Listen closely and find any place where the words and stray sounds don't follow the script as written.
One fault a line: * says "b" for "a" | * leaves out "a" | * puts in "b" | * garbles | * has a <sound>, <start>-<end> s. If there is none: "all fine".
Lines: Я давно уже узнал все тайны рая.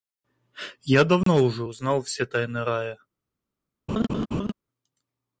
* has a dropout, 1.2-1.3 s
* has a laugh, 3.9-4.5 s